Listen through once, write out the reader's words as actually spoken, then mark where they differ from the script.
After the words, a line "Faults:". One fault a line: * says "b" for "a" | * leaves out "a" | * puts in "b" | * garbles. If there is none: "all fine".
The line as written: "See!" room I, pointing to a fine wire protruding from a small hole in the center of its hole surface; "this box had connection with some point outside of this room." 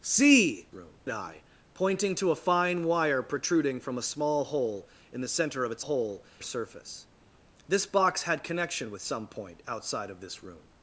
"See!" room I, pointing to a fine wire protruding from a small hole in the center of its hole surface; "this box had connection with some point outside of this room."
Faults:
all fine